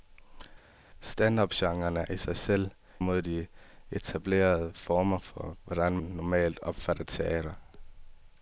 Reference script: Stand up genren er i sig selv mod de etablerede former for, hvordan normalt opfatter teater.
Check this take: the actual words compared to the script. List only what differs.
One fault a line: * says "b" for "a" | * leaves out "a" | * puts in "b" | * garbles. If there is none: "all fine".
all fine